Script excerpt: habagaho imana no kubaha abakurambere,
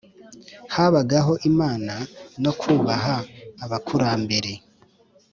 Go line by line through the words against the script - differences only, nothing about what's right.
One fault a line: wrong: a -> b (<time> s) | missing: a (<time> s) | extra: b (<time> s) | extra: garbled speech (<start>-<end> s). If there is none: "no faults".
no faults